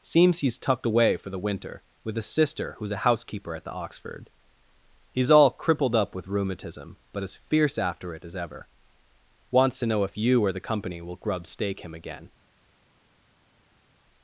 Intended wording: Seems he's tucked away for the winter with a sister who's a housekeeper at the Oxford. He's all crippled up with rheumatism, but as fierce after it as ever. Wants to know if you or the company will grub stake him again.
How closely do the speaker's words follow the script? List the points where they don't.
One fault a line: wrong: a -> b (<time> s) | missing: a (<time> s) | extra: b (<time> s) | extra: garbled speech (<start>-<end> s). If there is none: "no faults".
no faults